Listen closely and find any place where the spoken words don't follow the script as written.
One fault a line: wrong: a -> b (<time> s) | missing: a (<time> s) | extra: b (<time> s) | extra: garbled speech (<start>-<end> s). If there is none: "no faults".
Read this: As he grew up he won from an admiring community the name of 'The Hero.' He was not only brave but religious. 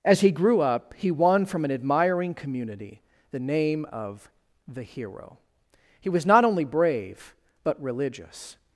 no faults